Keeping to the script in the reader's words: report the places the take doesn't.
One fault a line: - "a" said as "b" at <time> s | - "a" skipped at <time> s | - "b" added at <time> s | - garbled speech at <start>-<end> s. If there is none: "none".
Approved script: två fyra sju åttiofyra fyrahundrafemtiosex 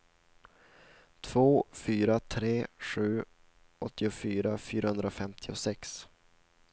- "tre" added at 2.2 s